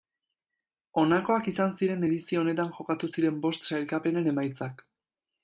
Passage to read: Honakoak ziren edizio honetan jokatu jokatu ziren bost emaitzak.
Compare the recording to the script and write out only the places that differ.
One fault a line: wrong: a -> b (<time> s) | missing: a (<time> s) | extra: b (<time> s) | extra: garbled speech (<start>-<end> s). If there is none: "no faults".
extra: izan (1.5 s)
missing: jokatu (3.1 s)
extra: sailkapenen (3.7 s)